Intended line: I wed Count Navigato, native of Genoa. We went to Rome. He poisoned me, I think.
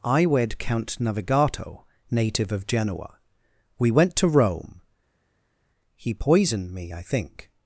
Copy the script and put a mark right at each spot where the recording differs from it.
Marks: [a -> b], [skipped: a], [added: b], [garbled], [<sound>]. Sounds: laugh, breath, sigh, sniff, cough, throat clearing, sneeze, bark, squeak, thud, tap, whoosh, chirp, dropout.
I wed Count Navigato, native of Genoa. We went to Rome. He poisoned me, I think.